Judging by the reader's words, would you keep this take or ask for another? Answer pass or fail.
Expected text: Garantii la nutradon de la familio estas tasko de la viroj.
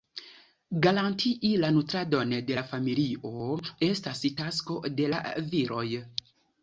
pass